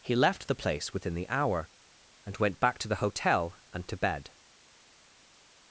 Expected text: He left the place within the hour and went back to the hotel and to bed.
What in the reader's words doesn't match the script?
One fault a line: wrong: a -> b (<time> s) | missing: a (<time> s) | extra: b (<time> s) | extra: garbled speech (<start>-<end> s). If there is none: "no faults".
no faults